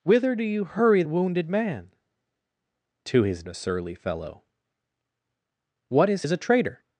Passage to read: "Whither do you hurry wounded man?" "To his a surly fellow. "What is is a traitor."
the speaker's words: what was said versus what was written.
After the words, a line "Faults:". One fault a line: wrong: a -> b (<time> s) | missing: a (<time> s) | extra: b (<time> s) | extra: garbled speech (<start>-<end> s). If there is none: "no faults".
"Whither do you hurry wounded man?" "To his a surly fellow. "What is is a traitor."
Faults:
no faults